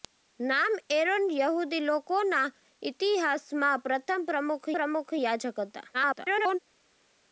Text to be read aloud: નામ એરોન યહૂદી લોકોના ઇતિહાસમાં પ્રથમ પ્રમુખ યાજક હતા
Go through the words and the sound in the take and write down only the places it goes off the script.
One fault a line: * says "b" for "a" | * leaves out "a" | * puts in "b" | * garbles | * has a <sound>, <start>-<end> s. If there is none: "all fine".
* puts in "પ્રમુખ"
* garbles